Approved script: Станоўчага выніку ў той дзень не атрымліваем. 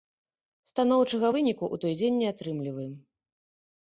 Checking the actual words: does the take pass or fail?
pass